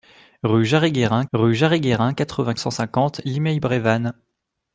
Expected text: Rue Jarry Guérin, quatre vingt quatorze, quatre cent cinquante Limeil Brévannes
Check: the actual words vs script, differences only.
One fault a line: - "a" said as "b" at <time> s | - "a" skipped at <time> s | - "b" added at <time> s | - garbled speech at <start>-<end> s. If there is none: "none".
- "quatre vingt quatorze" said as "rue Jarry Guérin" at 1.3 s
- "vingt" added at 2.4 s